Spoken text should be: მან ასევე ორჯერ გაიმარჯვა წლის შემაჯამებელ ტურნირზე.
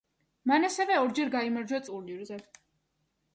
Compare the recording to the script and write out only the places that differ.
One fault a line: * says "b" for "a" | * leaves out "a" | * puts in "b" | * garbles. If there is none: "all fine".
* leaves out "წლის შემაჯამებელ"